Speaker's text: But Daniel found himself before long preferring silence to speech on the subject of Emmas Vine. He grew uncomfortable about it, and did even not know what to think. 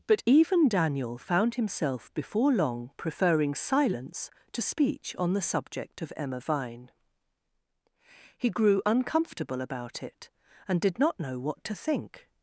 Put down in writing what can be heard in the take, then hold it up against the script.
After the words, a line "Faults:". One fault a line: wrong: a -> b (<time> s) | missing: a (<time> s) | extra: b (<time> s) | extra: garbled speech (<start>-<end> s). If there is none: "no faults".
But even Daniel found himself before long preferring silence to speech on the subject of Emma Vine. He grew uncomfortable about it, and did not know what to think.
Faults:
extra: even (0.2 s)
wrong: Emmas -> Emma (6.1 s)
missing: even (11.0 s)